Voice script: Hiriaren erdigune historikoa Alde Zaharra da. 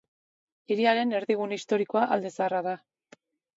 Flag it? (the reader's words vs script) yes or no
no